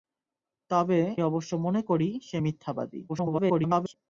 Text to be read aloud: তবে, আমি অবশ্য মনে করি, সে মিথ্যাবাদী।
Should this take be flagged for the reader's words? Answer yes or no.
yes